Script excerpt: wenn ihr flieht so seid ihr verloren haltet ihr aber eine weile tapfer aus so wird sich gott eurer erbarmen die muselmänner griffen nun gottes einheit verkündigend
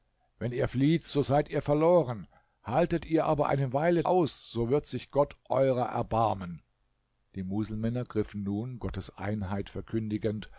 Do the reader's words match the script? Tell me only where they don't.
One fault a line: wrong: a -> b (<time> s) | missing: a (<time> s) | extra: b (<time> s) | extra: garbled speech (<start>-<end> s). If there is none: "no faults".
missing: tapfer (4.0 s)